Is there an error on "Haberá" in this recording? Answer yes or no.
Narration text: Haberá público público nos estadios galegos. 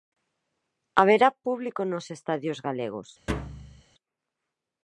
no